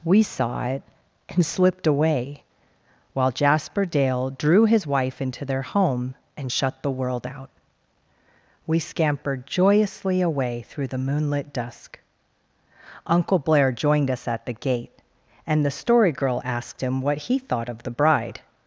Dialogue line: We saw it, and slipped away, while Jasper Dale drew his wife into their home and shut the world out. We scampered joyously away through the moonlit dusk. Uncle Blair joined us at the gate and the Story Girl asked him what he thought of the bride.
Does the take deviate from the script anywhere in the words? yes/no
no